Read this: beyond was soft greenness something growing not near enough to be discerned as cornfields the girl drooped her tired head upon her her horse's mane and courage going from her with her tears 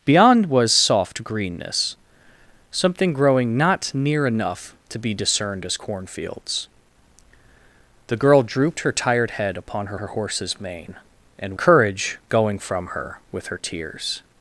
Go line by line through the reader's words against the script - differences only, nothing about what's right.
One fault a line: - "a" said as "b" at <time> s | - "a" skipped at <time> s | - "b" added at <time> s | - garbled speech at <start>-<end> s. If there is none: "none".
none